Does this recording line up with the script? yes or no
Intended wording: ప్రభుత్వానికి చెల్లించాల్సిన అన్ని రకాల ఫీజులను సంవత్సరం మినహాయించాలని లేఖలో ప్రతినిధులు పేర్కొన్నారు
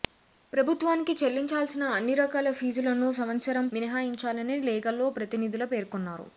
yes